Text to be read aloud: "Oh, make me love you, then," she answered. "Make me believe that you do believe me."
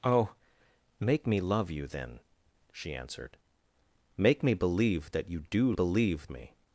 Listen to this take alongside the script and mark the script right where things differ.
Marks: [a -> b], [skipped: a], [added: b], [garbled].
"Oh, make me love you, then," she answered. "Make me believe that you do believe me."